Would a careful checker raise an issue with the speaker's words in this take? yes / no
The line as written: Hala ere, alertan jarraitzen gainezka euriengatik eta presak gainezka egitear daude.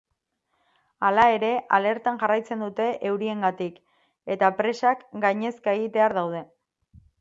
yes